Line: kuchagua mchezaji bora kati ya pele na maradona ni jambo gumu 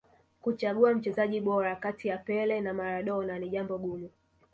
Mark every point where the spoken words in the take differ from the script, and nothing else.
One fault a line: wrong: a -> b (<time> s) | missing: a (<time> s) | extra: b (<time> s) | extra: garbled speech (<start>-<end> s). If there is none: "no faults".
no faults